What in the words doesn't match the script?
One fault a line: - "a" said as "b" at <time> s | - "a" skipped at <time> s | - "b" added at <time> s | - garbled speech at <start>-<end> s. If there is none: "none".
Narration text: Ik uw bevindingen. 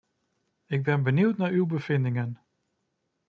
- "ben benieuwd naar" added at 0.8 s